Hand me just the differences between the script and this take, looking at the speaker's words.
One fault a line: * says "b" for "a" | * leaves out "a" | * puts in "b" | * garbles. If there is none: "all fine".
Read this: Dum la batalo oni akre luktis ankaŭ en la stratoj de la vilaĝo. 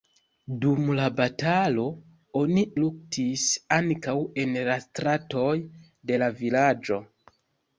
* leaves out "akre"